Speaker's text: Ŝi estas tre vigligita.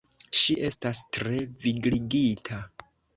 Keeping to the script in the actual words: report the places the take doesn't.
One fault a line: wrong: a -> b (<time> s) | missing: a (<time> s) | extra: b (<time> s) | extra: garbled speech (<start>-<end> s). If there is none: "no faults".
no faults